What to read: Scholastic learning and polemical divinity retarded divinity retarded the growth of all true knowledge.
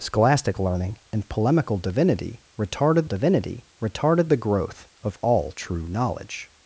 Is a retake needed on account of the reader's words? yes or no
no